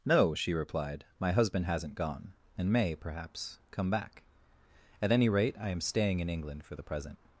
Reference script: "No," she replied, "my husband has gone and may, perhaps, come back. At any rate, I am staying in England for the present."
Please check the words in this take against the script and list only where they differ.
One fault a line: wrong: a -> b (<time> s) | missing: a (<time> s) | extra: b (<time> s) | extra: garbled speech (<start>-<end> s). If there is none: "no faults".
wrong: has -> hasn't (1.6 s)